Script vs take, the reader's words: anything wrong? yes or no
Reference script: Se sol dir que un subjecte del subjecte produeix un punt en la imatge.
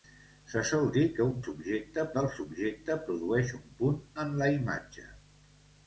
no